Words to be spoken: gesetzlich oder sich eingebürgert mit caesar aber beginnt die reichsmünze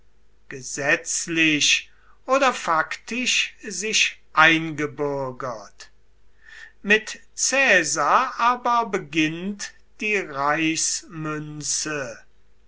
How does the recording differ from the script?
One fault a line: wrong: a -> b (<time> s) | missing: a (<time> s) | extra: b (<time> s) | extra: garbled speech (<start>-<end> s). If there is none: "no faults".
extra: faktisch (2.5 s)